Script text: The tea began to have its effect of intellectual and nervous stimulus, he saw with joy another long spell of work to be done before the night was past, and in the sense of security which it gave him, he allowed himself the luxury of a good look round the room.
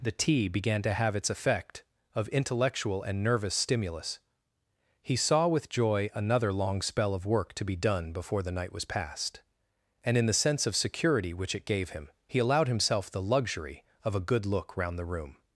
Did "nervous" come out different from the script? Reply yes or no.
no